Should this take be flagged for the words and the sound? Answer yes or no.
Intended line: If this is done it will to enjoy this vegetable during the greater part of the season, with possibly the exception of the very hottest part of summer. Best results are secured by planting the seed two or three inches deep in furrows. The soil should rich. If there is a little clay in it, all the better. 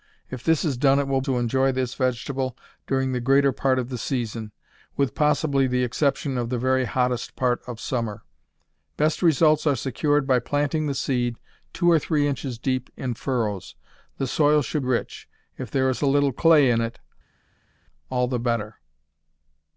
no